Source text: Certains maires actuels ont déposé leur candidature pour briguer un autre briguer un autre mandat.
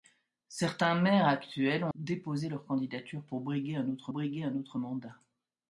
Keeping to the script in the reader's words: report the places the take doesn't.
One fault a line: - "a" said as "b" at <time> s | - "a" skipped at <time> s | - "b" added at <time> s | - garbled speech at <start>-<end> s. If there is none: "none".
none